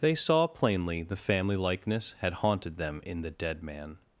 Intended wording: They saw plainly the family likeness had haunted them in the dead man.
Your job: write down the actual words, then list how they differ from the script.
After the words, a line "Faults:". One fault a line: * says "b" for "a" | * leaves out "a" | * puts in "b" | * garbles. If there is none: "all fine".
They saw plainly the family likeness had haunted them in the dead man.
Faults:
all fine